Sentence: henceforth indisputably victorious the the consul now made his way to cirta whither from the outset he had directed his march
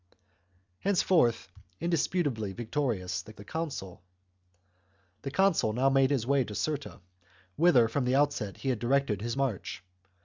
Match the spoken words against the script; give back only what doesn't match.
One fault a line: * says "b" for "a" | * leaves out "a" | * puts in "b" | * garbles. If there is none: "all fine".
all fine